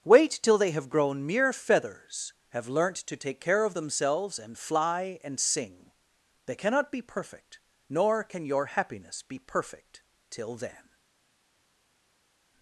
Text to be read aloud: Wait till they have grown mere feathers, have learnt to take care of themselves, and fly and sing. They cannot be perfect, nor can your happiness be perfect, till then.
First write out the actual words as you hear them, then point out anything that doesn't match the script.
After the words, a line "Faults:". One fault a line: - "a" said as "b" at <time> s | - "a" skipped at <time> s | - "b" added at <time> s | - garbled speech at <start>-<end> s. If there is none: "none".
Wait till they have grown mere feathers, have learnt to take care of themselves, and fly and sing. They cannot be perfect, nor can your happiness be perfect, till then.
Faults:
none